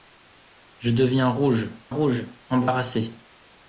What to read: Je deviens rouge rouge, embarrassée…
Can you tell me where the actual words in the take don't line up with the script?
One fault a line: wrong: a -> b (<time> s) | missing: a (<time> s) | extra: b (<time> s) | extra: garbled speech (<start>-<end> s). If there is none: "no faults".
no faults